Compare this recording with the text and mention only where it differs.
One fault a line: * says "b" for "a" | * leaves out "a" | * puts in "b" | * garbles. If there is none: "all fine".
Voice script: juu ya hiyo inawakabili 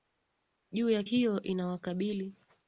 all fine